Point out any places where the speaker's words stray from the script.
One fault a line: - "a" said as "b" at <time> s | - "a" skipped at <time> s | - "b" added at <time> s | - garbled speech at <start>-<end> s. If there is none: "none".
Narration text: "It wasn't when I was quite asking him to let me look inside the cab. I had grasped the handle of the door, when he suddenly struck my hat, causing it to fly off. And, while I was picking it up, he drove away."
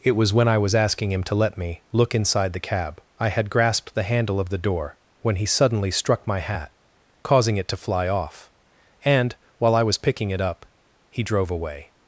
- "wasn't" said as "was" at 0.1 s
- "quite" skipped at 0.7 s